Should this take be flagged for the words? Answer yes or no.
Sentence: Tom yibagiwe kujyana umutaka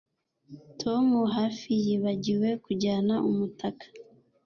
yes